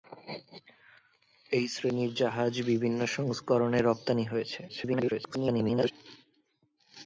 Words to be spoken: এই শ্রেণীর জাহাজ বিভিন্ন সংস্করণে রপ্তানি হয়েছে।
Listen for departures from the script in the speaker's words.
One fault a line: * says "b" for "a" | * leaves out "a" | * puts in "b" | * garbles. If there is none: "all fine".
* garbles